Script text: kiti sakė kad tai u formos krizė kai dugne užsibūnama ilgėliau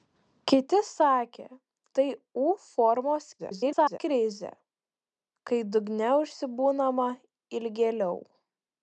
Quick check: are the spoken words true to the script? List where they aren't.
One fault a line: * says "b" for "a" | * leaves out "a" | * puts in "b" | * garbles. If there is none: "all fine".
* leaves out "kad"
* garbles